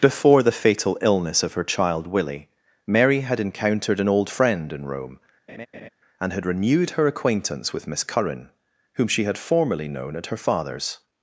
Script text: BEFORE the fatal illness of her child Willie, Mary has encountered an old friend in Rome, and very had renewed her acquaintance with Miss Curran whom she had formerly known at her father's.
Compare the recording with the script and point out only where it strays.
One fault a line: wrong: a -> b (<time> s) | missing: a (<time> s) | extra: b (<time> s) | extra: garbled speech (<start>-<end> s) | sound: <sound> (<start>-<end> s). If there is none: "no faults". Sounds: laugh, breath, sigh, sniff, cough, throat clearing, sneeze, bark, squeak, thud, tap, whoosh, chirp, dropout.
wrong: has -> had (3.2 s)
sound: laugh (5.5-5.9 s)
missing: very (6.3 s)